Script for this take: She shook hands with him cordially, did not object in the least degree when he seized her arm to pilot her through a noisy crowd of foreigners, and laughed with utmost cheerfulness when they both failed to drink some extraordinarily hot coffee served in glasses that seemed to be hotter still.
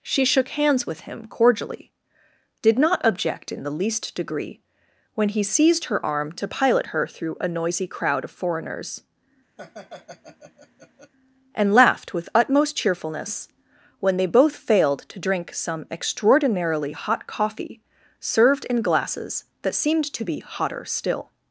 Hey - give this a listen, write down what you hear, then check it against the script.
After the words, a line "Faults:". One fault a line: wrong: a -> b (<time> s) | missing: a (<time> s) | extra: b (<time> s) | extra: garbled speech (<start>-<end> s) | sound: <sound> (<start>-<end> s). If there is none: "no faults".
She shook hands with him cordially, did not object in the least degree when he seized her arm to pilot her through a noisy crowd of foreigners, and laughed with utmost cheerfulness when they both failed to drink some extraordinarily hot coffee served in glasses that seemed to be hotter still.
Faults:
sound: laugh (9.6-11.1 s)